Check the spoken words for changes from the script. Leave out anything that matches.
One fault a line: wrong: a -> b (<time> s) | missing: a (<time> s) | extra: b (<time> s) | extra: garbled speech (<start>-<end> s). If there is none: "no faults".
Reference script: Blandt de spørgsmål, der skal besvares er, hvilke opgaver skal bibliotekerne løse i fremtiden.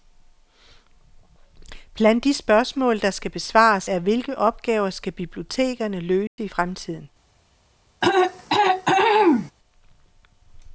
no faults